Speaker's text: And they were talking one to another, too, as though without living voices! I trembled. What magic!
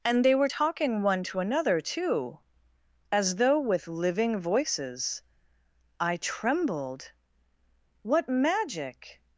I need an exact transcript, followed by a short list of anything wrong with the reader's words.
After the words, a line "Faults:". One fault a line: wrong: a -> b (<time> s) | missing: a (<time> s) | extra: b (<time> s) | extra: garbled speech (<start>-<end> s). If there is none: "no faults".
And they were talking one to another, too, as though with living voices! I trembled. What magic!
Faults:
wrong: without -> with (3.6 s)